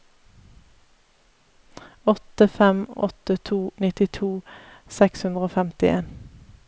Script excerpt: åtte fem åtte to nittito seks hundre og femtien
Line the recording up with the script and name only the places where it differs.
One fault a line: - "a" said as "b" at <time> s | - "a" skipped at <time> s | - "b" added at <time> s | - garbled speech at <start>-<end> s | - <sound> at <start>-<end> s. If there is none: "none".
none